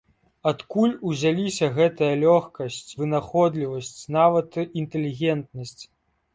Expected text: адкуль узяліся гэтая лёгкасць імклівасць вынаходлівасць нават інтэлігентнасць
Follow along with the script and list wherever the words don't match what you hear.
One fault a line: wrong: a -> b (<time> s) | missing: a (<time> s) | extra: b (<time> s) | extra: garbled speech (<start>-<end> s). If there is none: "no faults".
missing: імклівасць (2.9 s)